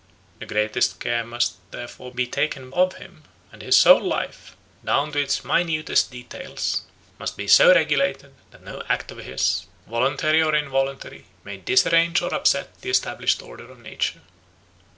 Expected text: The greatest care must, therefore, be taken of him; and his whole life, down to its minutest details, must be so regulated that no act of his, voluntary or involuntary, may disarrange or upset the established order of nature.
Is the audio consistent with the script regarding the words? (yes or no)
yes